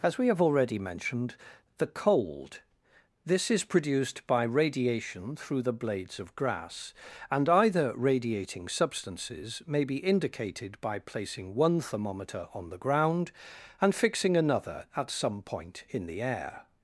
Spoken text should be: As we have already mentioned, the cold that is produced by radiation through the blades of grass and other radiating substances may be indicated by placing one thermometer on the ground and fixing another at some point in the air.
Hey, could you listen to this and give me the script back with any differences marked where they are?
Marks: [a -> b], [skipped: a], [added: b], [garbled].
As we have already mentioned, the cold [that -> this] is produced by radiation through the blades of grass and [other -> either] radiating substances may be indicated by placing one thermometer on the ground and fixing another at some point in the air.